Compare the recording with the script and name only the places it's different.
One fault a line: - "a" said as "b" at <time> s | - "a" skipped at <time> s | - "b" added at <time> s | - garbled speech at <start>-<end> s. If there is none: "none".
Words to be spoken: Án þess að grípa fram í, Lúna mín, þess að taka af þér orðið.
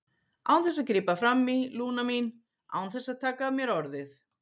- "án" added at 2.8 s
- "þér" said as "mér" at 3.6 s